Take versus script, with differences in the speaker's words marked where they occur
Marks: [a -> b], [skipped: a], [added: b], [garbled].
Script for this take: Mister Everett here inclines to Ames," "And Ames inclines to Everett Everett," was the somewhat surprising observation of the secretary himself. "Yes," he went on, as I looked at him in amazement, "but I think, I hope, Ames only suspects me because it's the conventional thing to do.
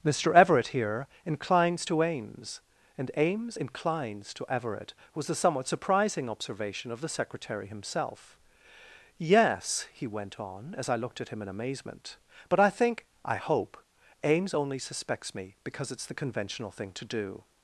Mister Everett here inclines to Ames," "And Ames inclines to Everett [skipped: Everett,"] was the somewhat surprising observation of the secretary himself. "Yes," he went on, as I looked at him in amazement, "but I think, I hope, Ames only suspects me because it's the conventional thing to do.